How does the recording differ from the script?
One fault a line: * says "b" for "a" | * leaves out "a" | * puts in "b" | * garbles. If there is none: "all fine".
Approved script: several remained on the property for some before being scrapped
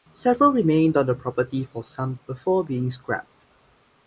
all fine